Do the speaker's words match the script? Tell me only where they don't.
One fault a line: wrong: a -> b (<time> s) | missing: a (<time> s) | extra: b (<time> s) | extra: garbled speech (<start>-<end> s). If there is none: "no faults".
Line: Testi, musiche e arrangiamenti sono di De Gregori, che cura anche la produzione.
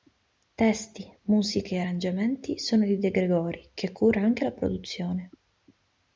no faults